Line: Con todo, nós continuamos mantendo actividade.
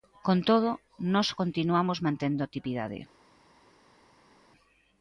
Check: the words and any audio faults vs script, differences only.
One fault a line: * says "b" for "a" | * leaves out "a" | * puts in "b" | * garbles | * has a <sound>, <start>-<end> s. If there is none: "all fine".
all fine